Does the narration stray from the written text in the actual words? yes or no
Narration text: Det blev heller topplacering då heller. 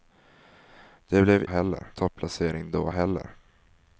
no